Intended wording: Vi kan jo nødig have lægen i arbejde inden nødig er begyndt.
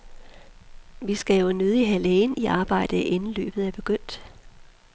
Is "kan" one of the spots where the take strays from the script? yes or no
yes